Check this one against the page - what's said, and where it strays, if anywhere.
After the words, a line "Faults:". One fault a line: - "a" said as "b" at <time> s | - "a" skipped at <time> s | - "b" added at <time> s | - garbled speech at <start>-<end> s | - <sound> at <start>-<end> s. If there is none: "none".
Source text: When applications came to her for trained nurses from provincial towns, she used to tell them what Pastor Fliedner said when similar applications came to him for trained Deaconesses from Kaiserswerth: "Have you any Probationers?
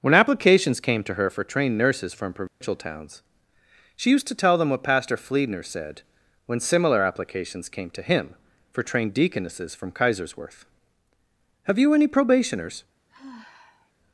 When applications came to her for trained nurses from provincial towns, she used to tell them what Pastor Fliedner said when similar applications came to him for trained Deaconesses from Kaiserswerth: "Have you any Probationers?
Faults:
- dropout at 2.5-2.6 s
- sigh at 13.1-13.9 s